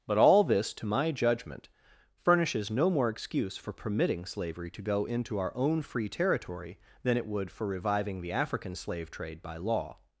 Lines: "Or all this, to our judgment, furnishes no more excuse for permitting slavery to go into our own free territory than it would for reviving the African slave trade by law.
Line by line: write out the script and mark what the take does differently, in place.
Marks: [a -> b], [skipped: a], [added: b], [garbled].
["Or -> But] all this, to [our -> my] judgment, furnishes no more excuse for permitting slavery to go into our own free territory than it would for reviving the African slave trade by law.